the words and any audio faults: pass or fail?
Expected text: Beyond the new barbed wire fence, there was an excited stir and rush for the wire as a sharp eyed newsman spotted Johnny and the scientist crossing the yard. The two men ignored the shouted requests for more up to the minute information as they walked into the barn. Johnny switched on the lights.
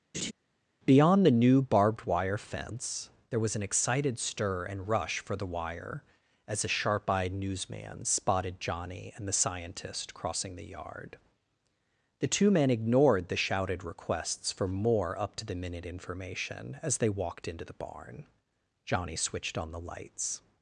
fail